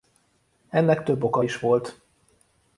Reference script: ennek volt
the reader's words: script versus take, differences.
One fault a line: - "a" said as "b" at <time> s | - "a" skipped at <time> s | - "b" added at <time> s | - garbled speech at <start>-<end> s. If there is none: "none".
- "több oka is" added at 1.0 s